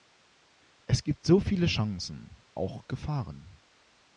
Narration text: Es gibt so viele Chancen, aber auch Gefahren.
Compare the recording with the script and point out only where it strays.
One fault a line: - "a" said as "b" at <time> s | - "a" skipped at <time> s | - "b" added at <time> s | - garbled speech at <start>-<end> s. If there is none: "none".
- "aber" skipped at 2.4 s